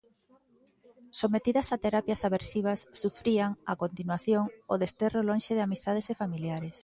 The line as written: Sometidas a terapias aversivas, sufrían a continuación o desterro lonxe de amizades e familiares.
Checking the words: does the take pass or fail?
pass